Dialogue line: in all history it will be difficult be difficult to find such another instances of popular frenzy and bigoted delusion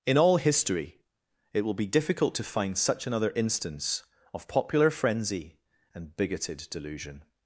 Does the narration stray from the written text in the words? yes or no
yes